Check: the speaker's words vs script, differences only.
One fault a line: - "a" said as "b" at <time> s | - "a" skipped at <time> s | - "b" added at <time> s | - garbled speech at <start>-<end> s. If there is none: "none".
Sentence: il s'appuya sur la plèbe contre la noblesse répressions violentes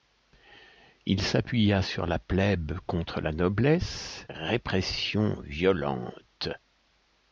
none